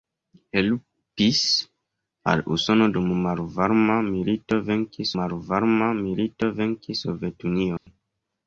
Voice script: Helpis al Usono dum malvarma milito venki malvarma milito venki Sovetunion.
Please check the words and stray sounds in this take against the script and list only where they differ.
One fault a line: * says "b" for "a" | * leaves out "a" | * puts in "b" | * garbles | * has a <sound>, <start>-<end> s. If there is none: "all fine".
* has a dropout, 7.8-7.9 s